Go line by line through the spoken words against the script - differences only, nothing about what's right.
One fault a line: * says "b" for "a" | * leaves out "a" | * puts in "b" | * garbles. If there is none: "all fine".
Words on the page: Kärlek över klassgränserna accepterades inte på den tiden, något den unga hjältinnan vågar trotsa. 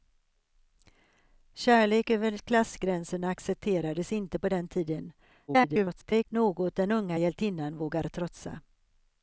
* garbles